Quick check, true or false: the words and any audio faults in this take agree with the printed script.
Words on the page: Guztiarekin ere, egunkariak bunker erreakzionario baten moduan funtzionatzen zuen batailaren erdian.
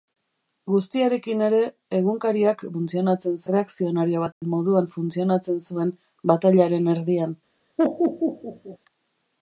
false